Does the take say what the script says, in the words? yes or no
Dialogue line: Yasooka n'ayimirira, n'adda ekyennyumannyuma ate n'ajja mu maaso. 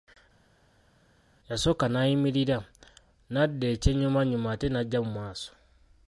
yes